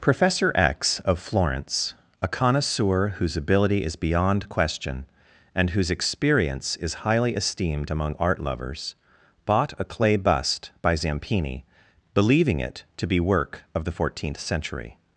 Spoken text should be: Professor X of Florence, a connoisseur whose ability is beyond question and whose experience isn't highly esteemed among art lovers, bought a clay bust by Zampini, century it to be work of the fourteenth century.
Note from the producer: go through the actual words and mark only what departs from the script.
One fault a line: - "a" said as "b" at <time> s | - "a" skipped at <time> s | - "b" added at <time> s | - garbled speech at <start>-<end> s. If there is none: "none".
- "isn't" said as "is" at 6.8 s
- "century" said as "believing" at 12.1 s